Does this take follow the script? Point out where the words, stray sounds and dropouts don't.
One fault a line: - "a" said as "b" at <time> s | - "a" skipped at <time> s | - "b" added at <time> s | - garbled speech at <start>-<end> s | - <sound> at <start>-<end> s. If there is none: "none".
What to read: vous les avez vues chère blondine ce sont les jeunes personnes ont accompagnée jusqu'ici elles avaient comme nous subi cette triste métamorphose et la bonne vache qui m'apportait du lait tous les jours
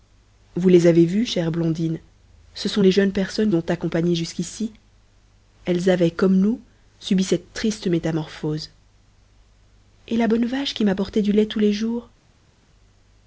none